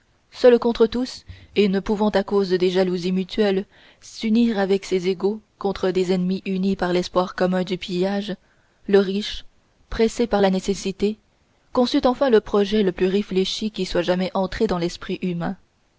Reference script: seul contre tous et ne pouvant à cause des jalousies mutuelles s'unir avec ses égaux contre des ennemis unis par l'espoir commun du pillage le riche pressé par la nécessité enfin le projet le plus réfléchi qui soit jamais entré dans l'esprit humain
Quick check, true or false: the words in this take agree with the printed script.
false